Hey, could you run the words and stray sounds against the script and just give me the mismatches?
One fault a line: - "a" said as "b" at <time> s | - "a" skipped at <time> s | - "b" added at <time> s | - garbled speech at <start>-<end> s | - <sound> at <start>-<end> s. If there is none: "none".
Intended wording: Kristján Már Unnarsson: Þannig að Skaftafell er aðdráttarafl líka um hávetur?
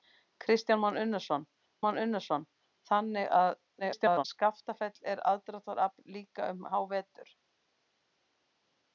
- "Már Unnarsson" added at 1.8 s
- garbled speech at 3.8-4.2 s